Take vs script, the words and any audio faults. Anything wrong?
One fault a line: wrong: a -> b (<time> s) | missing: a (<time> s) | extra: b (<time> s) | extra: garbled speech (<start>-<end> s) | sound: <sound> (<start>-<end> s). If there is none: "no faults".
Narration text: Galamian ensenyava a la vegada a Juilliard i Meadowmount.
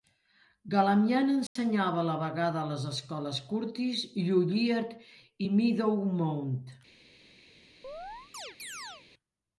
sound: dropout (1.5-1.6 s)
extra: les escoles Curtis (2.7 s)
sound: chirp (7.8-9.1 s)